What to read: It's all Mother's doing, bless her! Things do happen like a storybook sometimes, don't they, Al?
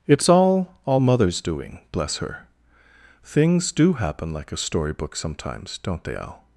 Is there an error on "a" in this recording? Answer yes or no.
no